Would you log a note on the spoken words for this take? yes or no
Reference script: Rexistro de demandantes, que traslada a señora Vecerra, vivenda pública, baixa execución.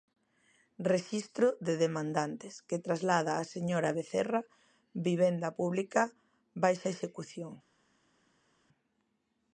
no